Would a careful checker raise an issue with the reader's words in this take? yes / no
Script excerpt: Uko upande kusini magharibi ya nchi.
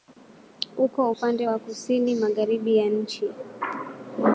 yes